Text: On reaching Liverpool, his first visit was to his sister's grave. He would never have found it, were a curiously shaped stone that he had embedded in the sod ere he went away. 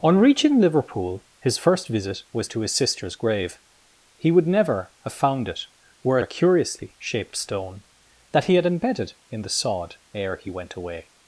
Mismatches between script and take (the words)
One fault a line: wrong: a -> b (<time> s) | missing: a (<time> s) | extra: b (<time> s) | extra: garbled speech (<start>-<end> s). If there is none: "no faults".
no faults